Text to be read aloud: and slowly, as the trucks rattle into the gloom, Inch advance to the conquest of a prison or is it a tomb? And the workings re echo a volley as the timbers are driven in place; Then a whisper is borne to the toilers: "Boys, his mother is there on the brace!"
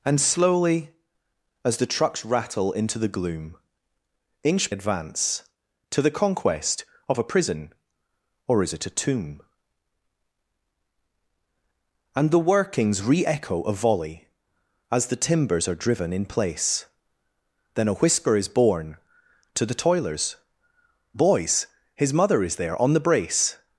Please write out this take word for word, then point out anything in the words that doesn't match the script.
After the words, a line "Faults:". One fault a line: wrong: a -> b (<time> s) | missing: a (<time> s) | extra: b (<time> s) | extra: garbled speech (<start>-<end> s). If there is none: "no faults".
and slowly, as the trucks rattle into the gloom, Inch advance to the conquest of a prison or is it a tomb? And the workings re echo a volley as the timbers are driven in place; Then a whisper is borne to the toilers: "Boys, his mother is there on the brace!"
Faults:
no faults